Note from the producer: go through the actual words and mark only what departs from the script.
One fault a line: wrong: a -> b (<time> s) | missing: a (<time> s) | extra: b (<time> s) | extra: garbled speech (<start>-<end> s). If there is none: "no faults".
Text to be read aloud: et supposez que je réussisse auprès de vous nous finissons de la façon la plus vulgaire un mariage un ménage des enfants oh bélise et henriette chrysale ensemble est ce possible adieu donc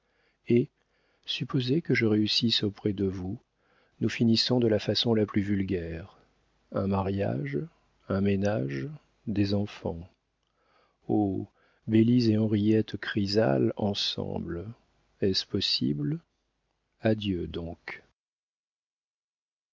no faults